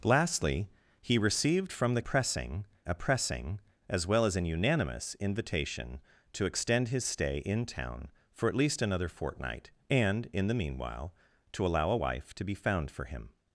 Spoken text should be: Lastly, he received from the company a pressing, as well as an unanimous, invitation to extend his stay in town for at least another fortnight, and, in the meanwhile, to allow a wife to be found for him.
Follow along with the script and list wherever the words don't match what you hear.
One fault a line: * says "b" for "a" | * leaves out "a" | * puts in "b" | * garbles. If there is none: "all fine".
* says "pressing" for "company"